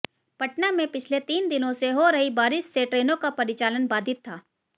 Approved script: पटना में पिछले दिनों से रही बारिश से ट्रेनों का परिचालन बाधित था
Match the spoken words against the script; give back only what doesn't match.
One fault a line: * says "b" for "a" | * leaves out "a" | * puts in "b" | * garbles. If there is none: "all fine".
* puts in "तीन"
* puts in "हो"